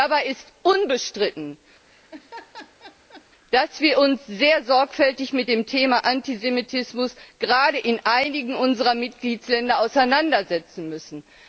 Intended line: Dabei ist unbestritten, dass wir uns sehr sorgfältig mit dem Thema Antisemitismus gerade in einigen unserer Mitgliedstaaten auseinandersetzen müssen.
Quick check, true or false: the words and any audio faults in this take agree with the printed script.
false